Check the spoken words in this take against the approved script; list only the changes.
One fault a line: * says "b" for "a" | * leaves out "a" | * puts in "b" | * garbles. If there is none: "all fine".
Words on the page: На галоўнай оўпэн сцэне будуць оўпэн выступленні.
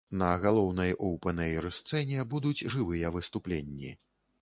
* puts in "эйр"
* says "жывыя" for "оўпэн"